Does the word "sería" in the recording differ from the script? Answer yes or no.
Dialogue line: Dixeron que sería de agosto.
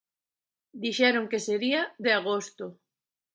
no